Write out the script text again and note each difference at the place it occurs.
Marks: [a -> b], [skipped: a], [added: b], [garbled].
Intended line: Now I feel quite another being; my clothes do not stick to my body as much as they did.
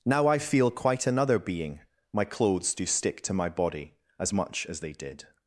Now I feel quite another being; my clothes do [skipped: not] stick to my body as much as they did.